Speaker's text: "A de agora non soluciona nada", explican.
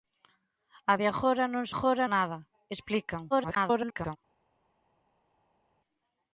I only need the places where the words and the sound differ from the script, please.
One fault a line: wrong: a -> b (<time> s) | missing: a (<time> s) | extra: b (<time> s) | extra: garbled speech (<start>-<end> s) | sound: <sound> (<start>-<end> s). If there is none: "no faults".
wrong: soluciona -> agora (1.7 s)
extra: garbled speech (3.3-4.2 s)